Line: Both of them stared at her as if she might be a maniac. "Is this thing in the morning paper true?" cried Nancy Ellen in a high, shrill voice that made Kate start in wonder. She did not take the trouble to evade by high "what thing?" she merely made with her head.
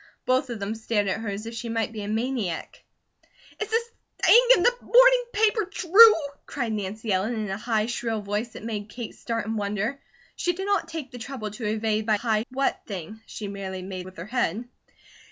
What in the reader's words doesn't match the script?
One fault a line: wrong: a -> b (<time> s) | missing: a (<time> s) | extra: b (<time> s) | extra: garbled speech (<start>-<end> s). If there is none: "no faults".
no faults